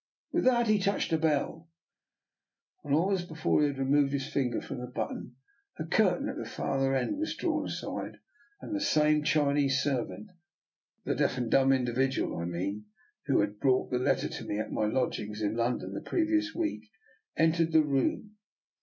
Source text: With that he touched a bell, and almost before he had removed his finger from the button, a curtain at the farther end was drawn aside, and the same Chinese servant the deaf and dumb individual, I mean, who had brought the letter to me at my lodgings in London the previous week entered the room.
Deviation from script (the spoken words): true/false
false